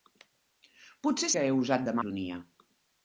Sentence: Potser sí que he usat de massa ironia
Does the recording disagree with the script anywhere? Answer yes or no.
yes